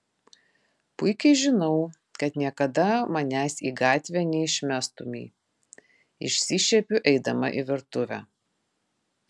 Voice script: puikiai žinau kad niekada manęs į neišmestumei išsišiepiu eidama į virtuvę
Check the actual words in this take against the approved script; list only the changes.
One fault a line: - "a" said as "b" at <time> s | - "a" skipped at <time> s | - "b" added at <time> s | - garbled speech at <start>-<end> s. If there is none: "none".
- "gatvę" added at 3.8 s